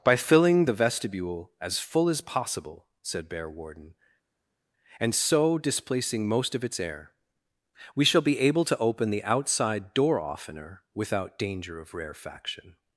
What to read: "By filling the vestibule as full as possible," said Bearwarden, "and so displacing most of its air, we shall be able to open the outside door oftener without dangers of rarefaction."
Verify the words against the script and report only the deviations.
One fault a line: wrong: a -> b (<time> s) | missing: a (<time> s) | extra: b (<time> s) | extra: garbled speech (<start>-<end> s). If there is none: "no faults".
wrong: dangers -> danger (11.4 s)